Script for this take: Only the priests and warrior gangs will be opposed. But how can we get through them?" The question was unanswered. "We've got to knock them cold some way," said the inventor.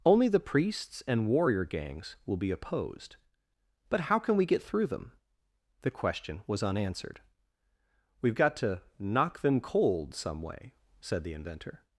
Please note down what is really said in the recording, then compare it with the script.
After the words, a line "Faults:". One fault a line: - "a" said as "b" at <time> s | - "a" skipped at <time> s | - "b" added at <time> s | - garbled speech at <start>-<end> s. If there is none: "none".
Only the priests and warrior gangs will be opposed. But how can we get through them?" The question was unanswered. "We've got to knock them cold some way," said the inventor.
Faults:
none